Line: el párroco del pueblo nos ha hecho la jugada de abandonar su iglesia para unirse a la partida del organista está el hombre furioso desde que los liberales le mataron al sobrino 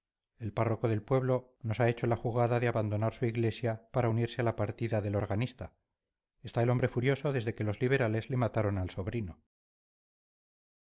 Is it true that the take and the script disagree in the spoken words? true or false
false